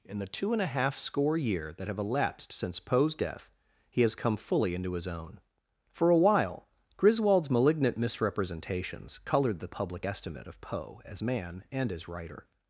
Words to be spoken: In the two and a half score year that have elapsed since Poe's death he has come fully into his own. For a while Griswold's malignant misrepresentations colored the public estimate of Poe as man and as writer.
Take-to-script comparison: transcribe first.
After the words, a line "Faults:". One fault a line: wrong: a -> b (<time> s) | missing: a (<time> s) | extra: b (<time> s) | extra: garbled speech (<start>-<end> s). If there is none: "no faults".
In the two and a half score year that have elapsed since Poe's death he has come fully into his own. For a while Griswold's malignant misrepresentations colored the public estimate of Poe as man and as writer.
Faults:
no faults